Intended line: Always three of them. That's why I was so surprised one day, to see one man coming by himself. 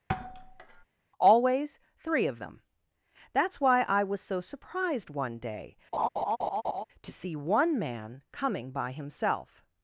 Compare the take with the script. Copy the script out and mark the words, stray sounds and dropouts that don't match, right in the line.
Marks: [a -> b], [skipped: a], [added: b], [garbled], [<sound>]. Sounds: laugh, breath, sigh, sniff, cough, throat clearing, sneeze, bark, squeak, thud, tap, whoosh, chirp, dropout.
[thud] Always three of them. That's why I was so surprised one day, [laugh] to see one man coming by himself.